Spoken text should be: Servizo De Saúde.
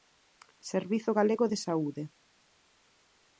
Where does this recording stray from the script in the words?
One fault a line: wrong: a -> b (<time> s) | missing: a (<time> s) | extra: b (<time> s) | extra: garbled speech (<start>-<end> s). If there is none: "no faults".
extra: Galego (1.2 s)